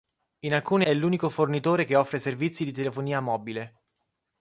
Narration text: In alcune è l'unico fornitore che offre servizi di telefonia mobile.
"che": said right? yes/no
yes